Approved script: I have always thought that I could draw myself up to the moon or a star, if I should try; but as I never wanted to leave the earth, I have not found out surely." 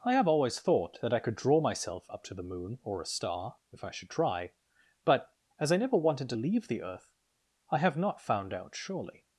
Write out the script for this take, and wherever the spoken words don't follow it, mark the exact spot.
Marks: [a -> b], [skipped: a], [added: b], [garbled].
I have always thought that I could draw myself up to the moon or a star, if I should try; but as I never wanted to leave the earth, I have not found out surely."